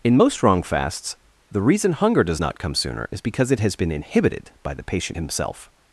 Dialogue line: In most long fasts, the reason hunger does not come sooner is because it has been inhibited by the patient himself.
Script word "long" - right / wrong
wrong